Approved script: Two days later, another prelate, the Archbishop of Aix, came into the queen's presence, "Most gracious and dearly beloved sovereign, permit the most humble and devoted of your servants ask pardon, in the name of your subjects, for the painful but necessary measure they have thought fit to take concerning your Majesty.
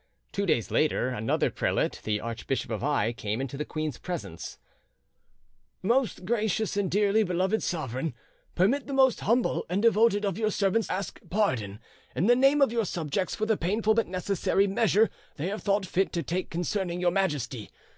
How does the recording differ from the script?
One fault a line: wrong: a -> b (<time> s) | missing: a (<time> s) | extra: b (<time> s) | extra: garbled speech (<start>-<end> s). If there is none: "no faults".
no faults